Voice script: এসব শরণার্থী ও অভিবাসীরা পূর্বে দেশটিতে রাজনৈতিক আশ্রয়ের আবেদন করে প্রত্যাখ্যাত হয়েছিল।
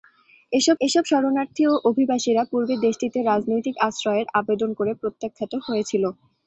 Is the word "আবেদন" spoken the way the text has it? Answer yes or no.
yes